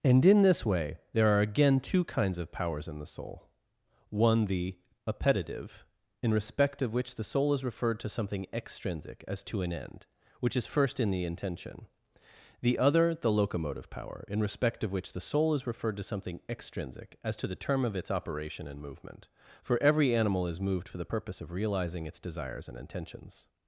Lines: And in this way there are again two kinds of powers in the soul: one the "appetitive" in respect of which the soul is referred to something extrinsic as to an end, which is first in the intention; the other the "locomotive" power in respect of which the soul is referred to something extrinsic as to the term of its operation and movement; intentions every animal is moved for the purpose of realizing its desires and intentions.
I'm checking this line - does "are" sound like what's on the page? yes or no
yes